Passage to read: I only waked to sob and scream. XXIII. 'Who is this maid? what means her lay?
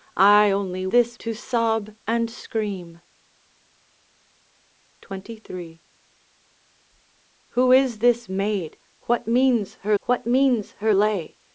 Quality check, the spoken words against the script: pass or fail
fail